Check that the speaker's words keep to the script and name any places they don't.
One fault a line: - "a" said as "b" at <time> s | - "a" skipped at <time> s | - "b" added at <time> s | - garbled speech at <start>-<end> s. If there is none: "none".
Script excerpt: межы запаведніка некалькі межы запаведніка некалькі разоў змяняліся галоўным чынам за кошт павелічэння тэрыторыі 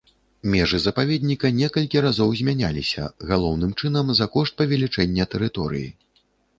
- "межы запаведніка некалькі" skipped at 2.0 s